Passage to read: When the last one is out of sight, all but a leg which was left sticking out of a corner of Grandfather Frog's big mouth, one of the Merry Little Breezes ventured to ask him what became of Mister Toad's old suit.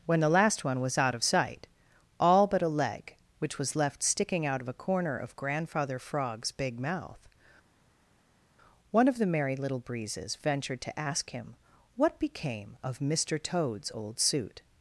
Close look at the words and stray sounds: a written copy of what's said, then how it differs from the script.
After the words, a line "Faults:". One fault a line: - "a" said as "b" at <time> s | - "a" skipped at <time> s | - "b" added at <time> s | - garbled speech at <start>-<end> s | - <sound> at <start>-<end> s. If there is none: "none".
When the last one was out of sight, all but a leg which was left sticking out of a corner of Grandfather Frog's big mouth, one of the Merry Little Breezes ventured to ask him what became of Mister Toad's old suit.
Faults:
- "is" said as "was" at 0.8 s